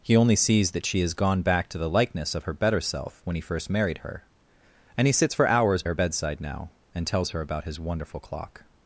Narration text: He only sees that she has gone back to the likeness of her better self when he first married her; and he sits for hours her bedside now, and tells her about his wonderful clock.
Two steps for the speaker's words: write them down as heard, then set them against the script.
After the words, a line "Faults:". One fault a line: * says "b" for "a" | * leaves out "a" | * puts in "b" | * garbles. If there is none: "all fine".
He only sees that she has gone back to the likeness of her better self when he first married her; and he sits for hours her bedside now, and tells her about his wonderful clock.
Faults:
all fine